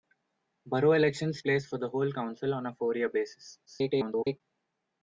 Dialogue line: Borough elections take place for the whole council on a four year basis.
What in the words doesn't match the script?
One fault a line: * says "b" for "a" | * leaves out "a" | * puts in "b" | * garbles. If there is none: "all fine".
* leaves out "take"
* garbles